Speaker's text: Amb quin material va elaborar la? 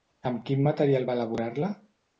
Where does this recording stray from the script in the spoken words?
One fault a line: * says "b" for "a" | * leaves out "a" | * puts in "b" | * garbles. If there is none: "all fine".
all fine